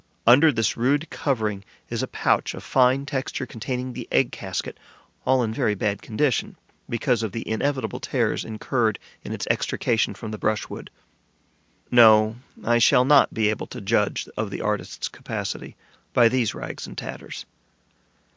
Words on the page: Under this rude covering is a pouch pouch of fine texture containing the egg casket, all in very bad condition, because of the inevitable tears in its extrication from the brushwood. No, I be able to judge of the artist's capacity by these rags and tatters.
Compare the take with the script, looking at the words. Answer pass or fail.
fail